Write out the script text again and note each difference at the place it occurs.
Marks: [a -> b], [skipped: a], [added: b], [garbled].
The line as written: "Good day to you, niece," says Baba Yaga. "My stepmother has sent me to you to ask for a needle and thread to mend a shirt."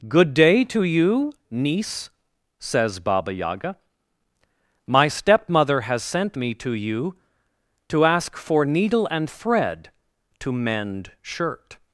"Good day to you, niece," says Baba Yaga. "My stepmother has sent me to you to ask for [skipped: a] needle and thread to mend [skipped: a] shirt."